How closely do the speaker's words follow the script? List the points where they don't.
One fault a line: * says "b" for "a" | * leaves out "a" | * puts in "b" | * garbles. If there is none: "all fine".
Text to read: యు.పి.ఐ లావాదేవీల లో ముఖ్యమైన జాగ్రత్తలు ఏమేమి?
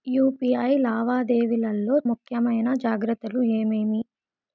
all fine